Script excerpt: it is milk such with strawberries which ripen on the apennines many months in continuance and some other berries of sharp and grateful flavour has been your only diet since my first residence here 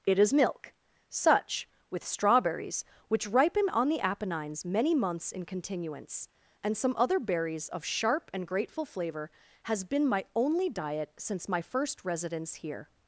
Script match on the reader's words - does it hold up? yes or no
no